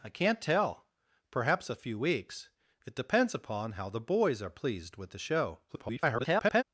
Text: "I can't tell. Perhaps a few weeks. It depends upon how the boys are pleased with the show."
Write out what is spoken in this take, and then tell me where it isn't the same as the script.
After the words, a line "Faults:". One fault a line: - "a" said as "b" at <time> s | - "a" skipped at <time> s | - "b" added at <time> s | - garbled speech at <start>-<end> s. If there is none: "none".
"I can't tell. Perhaps a few weeks. It depends upon how the boys are pleased with the show." [garbled]
Faults:
- garbled speech at 5.7-6.6 s